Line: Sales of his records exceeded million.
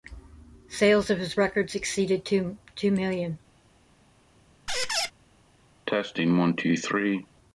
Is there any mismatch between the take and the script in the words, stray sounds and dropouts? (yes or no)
yes